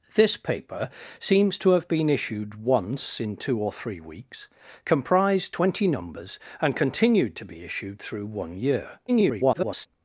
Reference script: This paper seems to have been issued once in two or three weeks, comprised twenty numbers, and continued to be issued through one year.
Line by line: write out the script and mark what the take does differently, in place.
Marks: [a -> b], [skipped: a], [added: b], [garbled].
This paper seems to have been issued once in two or three weeks, comprised twenty numbers, and continued to be issued through one year. [garbled]